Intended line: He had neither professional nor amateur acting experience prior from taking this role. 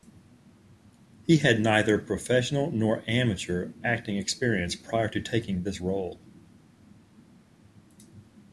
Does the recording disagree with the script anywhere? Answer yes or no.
yes